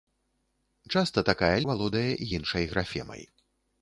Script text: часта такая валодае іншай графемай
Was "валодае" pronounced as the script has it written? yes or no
yes